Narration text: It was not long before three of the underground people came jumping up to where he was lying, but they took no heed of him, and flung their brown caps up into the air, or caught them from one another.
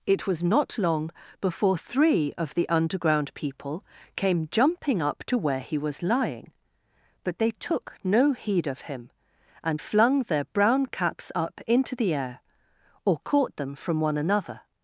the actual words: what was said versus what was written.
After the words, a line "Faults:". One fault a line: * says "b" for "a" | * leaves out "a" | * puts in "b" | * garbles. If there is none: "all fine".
It was not long before three of the underground people came jumping up to where he was lying, but they took no heed of him, and flung their brown caps up into the air, or caught them from one another.
Faults:
all fine